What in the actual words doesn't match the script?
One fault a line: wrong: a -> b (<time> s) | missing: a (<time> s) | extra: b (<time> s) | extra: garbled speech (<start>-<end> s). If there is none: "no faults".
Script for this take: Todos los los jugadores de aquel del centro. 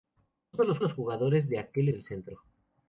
no faults